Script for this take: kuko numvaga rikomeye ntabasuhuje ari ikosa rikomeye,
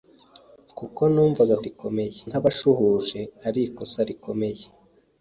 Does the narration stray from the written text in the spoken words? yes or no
no